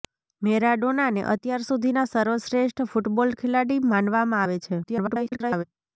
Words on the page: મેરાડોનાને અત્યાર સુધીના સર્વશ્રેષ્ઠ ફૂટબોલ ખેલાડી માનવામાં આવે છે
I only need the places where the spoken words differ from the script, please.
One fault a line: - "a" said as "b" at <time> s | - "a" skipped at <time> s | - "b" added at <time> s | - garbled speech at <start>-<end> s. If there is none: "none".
- garbled speech at 4.8-5.6 s